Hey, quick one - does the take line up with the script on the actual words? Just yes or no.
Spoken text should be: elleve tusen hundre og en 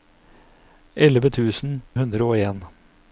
yes